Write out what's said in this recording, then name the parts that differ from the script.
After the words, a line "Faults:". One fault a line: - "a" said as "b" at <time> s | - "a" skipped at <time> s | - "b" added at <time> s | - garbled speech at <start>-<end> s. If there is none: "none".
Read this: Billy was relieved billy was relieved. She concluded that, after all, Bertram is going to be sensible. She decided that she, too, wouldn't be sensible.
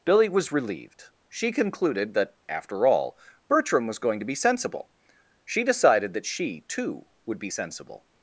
Billy was relieved. She concluded that, after all, Bertram was going to be sensible. She decided that she, too, would be sensible.
Faults:
- "billy was relieved" skipped at 1.1 s
- "is" said as "was" at 3.9 s
- "wouldn't" said as "would" at 7.2 s